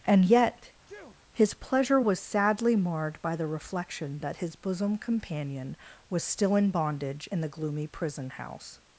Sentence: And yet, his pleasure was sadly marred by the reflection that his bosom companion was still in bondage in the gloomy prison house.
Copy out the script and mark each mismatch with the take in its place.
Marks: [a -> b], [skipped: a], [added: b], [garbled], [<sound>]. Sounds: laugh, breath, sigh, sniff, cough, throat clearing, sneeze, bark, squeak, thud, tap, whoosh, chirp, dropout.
And yet, [sneeze] his pleasure was sadly marred by the reflection that his bosom companion was still in bondage in the gloomy prison house.